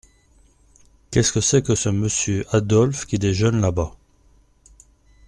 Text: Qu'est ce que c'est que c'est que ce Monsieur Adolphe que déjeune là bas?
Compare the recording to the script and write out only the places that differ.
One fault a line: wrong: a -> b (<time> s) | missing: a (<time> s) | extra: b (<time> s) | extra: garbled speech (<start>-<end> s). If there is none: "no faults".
missing: c'est que (1.8 s)
wrong: que -> qui (3.0 s)